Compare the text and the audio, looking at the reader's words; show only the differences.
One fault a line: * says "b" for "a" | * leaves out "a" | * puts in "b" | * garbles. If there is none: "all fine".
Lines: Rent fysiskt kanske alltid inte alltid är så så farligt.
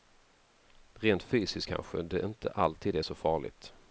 * says "det" for "alltid"
* leaves out "så"